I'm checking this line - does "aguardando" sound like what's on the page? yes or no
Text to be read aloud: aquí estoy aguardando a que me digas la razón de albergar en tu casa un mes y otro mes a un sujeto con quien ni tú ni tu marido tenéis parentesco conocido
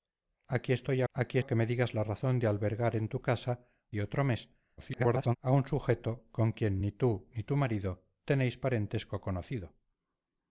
no